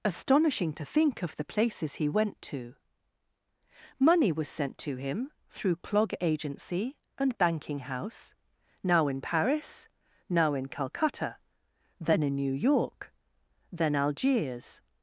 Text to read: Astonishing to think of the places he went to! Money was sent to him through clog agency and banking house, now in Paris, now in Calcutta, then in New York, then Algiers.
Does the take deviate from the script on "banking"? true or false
false